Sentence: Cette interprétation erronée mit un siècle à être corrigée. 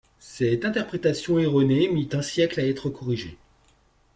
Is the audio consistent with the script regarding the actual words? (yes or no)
yes